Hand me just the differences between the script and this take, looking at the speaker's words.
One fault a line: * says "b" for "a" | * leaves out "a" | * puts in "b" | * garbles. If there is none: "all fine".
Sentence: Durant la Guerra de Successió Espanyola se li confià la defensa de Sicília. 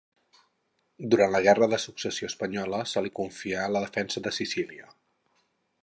all fine